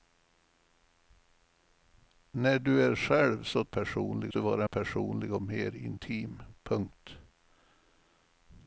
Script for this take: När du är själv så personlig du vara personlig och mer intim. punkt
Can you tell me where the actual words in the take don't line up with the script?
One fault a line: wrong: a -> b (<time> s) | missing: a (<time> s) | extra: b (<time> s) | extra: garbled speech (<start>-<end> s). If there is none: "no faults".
no faults